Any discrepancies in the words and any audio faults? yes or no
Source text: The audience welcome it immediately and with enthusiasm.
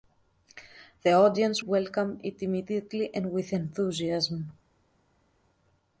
no